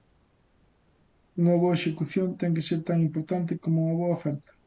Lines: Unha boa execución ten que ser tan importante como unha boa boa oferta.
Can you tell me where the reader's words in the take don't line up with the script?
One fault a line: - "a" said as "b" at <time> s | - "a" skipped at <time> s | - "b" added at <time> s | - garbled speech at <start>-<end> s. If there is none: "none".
- "boa" skipped at 4.2 s